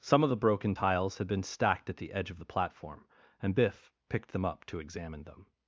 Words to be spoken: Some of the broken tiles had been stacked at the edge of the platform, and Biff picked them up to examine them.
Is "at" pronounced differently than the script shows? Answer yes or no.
no